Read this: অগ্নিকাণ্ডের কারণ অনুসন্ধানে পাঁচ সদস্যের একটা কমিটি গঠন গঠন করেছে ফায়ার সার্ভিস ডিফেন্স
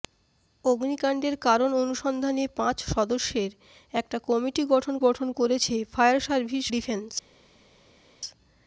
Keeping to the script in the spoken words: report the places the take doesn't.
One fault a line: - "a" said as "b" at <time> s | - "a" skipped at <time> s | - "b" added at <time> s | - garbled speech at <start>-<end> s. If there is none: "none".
none